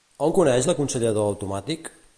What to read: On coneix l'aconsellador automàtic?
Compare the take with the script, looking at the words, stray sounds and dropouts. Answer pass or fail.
pass